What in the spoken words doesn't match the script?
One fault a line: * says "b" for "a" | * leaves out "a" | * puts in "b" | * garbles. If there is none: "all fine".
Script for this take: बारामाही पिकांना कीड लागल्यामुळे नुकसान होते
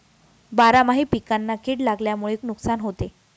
all fine